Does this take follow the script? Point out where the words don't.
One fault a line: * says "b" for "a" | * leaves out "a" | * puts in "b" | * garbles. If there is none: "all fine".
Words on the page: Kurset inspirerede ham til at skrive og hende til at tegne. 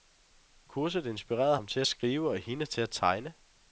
all fine